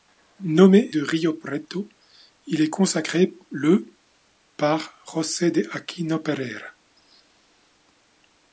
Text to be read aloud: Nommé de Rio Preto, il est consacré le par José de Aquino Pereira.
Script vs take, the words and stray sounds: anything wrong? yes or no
no